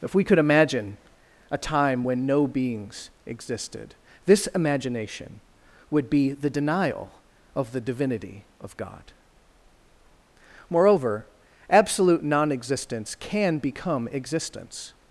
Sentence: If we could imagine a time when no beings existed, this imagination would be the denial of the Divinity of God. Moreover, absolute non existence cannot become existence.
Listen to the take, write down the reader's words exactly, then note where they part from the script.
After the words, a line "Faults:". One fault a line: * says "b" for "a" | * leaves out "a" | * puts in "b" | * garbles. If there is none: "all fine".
If we could imagine a time when no beings existed, this imagination would be the denial of the Divinity of God. Moreover, absolute non existence can become existence.
Faults:
* says "can" for "cannot"